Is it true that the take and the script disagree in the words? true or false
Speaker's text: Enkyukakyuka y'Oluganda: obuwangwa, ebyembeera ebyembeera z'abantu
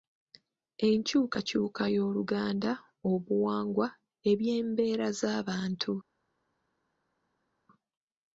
true